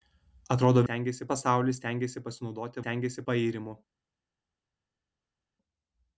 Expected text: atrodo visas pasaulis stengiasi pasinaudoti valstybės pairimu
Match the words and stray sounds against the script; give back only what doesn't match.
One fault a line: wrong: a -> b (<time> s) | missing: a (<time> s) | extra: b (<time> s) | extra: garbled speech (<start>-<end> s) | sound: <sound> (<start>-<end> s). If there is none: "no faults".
wrong: visas -> stengiasi (0.9 s)
wrong: valstybės -> stengiasi (2.8 s)